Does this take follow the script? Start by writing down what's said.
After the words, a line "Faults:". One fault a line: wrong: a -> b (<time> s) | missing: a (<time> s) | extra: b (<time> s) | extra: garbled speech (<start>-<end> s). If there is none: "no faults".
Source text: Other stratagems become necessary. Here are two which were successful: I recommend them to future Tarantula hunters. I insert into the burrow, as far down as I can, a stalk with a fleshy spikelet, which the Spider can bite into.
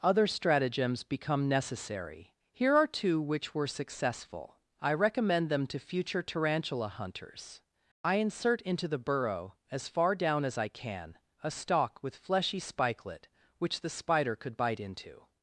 Other stratagems become necessary. Here are two which were successful: I recommend them to future Tarantula hunters. I insert into the burrow, as far down as I can, a stalk with fleshy spikelet, which the Spider could bite into.
Faults:
missing: a (12.1 s)
wrong: can -> could (14.4 s)